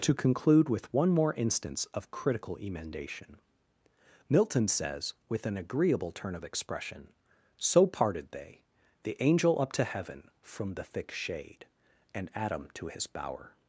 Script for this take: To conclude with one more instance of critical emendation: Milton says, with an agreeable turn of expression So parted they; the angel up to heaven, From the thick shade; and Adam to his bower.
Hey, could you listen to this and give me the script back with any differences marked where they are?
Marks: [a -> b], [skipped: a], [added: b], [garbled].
To conclude with one more instance of critical emendation: Milton says, with an agreeable turn of expression So parted they; the angel up to heaven, From the thick shade; and Adam to his bower.